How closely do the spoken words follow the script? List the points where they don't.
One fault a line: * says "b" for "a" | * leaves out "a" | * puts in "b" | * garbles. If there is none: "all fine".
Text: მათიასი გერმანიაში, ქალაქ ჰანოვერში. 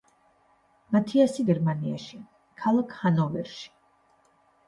all fine